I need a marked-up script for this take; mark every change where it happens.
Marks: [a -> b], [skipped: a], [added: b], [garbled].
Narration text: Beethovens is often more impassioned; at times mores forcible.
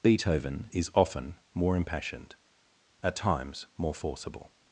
[Beethovens -> Beethoven] is often more impassioned; at times [mores -> more] forcible.